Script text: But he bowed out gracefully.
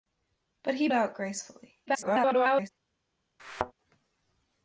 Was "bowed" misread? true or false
true